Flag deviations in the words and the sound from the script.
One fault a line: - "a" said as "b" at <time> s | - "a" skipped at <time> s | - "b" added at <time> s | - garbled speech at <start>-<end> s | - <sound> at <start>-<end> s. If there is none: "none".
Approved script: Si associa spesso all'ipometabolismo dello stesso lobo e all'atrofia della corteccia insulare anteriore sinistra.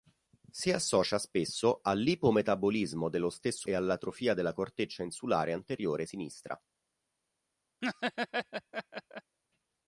- "lobo" skipped at 3.7 s
- laugh at 7.8-9.4 s